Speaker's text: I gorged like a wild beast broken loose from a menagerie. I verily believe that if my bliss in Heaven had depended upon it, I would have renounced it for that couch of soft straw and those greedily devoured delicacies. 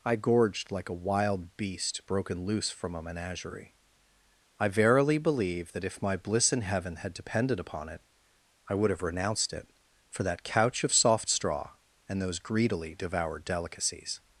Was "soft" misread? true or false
false